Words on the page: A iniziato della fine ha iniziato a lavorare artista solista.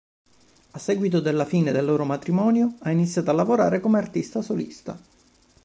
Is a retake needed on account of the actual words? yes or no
yes